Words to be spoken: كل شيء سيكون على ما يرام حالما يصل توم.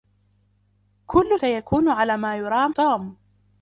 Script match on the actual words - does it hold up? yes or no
no